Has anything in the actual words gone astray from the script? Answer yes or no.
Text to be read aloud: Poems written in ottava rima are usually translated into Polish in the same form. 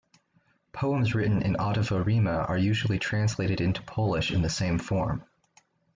no